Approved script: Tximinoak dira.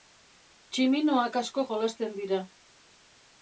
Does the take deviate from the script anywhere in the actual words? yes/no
yes